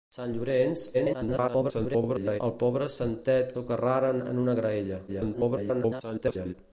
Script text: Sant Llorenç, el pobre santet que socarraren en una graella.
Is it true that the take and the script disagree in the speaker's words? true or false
true